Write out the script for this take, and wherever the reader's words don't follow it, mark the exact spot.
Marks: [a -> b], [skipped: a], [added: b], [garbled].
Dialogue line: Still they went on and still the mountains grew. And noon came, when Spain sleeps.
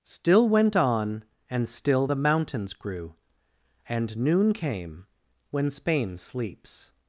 Still [skipped: they] went on and still the mountains grew. And noon came, when Spain sleeps.